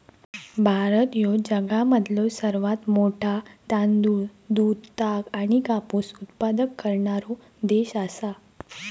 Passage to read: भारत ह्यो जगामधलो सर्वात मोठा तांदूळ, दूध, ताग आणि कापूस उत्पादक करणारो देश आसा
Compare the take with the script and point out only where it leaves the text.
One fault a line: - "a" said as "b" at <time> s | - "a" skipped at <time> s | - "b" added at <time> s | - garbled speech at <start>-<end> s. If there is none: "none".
none